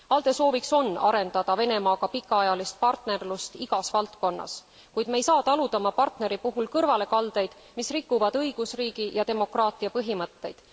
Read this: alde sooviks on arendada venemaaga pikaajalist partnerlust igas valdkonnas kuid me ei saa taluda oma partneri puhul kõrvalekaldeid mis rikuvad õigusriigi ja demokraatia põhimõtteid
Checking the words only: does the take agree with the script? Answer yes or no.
yes